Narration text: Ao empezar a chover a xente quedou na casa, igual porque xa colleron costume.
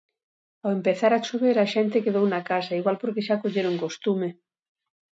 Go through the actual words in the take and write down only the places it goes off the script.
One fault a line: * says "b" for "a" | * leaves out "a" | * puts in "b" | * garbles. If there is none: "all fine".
all fine